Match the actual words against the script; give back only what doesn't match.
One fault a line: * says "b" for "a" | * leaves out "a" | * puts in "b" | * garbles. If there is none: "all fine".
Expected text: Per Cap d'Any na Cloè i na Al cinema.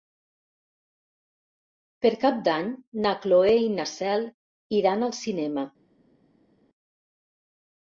* puts in "Cel iran"